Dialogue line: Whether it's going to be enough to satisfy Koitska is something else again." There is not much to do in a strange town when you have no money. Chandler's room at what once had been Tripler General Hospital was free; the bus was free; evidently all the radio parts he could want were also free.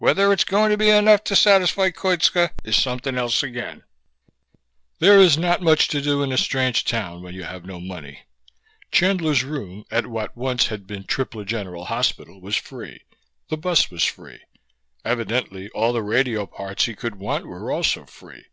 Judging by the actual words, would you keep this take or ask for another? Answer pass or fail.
pass